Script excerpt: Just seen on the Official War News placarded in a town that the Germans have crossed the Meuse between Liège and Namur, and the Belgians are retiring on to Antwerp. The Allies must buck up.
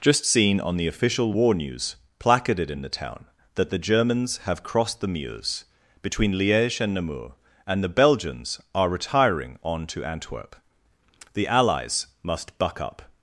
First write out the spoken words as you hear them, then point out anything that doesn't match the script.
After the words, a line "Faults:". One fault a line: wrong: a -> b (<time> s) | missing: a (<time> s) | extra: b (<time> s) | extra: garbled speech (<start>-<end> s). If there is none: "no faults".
Just seen on the Official War News placarded in the town that the Germans have crossed the Meuse between Liège and Namur, and the Belgians are retiring on to Antwerp. The Allies must buck up.
Faults:
wrong: a -> the (2.8 s)